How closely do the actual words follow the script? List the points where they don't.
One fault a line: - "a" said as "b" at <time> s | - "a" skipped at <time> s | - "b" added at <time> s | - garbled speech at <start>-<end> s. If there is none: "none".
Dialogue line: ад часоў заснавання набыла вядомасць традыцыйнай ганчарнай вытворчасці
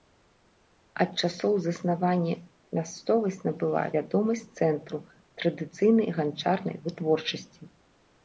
- "мясцовасць" added at 2.8 s
- "цэнтру" added at 4.6 s